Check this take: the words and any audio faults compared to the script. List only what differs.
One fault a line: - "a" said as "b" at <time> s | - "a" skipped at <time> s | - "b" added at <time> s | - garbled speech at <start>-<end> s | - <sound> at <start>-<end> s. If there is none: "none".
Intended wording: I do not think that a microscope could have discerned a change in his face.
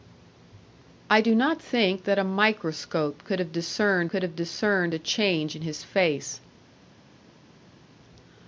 - "could have discerned" added at 4.1 s